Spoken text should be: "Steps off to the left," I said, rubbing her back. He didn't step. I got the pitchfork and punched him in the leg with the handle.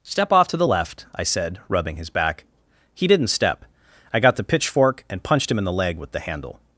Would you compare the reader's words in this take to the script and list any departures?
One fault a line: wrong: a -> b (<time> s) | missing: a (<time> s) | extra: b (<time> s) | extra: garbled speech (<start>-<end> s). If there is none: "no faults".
wrong: Steps -> Step (0.0 s)
wrong: her -> his (2.0 s)